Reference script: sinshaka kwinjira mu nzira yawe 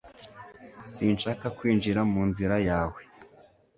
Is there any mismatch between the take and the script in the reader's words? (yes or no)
no